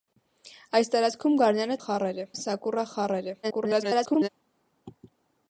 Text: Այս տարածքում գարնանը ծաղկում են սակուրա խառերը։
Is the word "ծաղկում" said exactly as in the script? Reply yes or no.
no